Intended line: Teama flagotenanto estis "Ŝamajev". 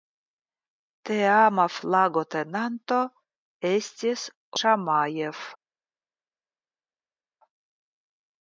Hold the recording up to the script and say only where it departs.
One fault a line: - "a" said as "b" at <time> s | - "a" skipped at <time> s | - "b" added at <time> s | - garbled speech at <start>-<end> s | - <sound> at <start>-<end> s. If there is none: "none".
none